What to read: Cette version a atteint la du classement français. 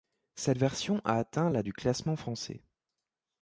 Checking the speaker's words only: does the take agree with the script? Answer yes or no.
yes